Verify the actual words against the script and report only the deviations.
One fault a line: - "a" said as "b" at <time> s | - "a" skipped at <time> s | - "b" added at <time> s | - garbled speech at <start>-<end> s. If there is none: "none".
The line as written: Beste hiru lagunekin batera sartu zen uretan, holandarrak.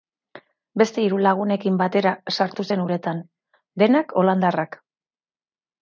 - "denak" added at 3.8 s